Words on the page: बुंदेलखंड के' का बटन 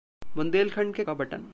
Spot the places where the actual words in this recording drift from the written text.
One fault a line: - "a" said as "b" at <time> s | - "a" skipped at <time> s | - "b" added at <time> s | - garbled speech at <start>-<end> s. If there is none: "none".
none